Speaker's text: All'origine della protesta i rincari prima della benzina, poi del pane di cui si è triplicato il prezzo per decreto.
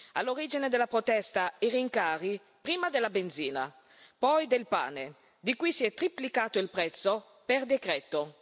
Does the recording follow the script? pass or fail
pass